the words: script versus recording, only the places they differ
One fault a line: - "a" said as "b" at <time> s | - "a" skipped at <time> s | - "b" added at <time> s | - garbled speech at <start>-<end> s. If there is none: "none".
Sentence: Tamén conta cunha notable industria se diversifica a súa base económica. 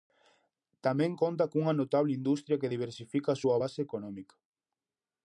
- "se" said as "que" at 2.6 s